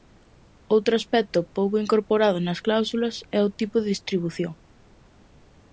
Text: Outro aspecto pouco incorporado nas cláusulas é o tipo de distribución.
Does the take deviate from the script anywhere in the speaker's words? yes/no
no